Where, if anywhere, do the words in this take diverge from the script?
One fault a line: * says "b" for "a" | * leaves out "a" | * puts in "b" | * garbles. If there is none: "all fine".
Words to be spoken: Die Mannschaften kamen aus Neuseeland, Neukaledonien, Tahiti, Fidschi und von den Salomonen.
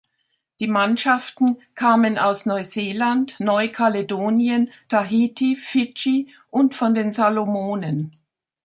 all fine